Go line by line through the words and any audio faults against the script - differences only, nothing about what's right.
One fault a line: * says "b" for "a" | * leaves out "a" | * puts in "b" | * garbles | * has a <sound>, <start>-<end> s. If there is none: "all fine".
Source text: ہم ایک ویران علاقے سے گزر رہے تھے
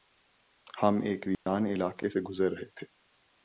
* has a dropout, 1.3-1.5 s